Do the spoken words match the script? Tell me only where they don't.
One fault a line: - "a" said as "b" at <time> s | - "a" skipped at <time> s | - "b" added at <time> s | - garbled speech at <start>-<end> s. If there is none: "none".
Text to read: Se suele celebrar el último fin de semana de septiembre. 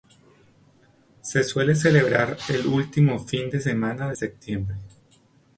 none